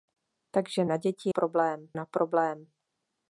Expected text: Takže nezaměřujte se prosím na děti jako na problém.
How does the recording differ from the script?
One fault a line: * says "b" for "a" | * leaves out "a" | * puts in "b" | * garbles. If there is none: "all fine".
* leaves out "nezaměřujte se prosím"
* says "problém" for "jako"